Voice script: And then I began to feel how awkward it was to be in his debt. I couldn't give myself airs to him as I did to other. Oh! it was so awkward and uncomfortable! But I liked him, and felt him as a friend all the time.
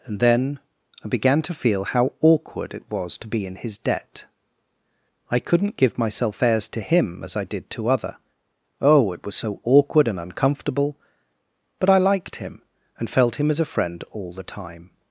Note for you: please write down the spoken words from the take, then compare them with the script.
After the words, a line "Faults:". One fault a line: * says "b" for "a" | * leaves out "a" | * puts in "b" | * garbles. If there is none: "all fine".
And then I began to feel how awkward it was to be in his debt. I couldn't give myself airs to him as I did to other. Oh! it was so awkward and uncomfortable! But I liked him, and felt him as a friend all the time.
Faults:
all fine